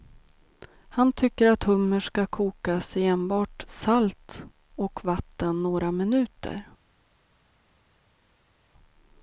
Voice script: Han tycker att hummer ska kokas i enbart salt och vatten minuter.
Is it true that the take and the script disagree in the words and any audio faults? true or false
true